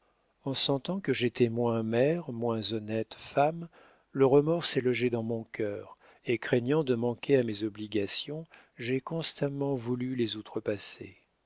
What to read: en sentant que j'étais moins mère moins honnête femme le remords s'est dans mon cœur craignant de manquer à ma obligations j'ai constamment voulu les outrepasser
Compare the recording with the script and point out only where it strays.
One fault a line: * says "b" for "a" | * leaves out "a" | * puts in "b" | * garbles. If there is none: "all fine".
* puts in "logé"
* puts in "et"
* says "mes" for "ma"